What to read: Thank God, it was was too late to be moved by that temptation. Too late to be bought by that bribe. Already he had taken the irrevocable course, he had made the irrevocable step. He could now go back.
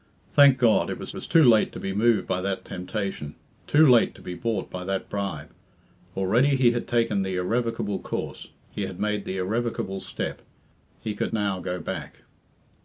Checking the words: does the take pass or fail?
pass